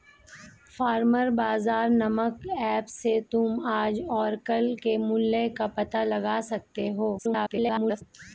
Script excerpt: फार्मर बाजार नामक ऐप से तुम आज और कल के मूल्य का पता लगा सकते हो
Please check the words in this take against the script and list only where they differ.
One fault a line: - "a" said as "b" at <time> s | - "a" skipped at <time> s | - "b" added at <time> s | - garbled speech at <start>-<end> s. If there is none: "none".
- garbled speech at 7.2-8.0 s